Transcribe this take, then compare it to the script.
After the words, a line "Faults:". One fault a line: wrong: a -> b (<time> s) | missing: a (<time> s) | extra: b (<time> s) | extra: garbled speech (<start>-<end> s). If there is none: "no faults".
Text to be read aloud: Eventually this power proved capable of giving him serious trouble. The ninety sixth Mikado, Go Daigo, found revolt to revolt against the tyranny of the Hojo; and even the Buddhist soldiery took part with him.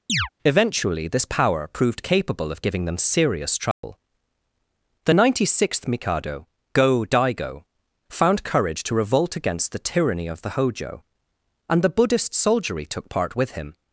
Eventually this power proved capable of giving them serious trouble. The ninety sixth Mikado, Go Daigo, found courage to revolt against the tyranny of the Hojo; and the Buddhist soldiery took part with him.
Faults:
wrong: him -> them (2.8 s)
wrong: revolt -> courage (8.4 s)
missing: even (11.8 s)